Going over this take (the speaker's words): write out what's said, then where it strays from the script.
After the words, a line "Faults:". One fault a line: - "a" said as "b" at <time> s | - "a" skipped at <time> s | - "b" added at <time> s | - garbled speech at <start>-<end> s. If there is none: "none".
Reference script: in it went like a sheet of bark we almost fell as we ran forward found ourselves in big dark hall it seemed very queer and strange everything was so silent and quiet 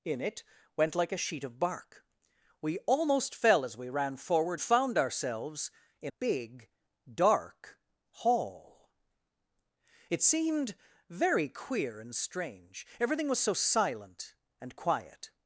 in it went like a sheet of bark we almost fell as we ran forward found ourselves in big dark hall it seemed very queer and strange everything was so silent and quiet
Faults:
none